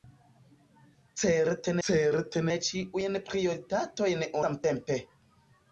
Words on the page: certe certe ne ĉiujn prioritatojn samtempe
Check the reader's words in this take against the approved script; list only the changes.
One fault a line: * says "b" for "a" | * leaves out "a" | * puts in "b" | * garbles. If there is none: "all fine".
all fine